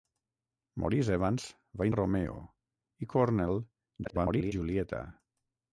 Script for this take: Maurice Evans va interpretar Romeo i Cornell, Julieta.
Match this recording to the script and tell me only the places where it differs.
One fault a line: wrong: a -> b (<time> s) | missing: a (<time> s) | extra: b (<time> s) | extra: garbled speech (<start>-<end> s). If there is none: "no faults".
missing: interpretar (1.9 s)
extra: garbled speech (4.0-4.5 s)